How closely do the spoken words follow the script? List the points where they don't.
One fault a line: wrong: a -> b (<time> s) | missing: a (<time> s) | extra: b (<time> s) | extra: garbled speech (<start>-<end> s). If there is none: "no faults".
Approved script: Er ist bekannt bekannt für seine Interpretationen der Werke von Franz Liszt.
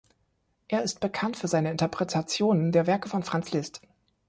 missing: bekannt (1.4 s)